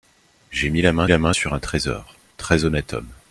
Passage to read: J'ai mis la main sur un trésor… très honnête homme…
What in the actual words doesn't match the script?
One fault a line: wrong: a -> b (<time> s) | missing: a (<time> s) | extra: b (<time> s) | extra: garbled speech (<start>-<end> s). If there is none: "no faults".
extra: la main (1.1 s)